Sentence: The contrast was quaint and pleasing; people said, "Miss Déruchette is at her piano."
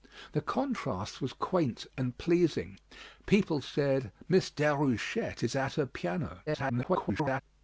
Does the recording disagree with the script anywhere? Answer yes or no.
yes